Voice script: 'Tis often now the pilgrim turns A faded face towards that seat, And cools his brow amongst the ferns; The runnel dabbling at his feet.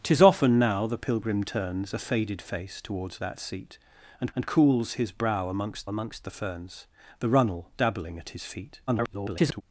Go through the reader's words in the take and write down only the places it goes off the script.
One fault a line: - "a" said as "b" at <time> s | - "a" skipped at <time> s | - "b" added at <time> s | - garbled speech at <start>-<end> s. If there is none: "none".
- "And" added at 4.3 s
- "amongst" added at 5.9 s
- garbled speech at 8.9-9.6 s